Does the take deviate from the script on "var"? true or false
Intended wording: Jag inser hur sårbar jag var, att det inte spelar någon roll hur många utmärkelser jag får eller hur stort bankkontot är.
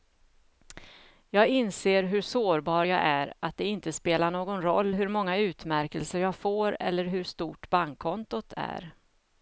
true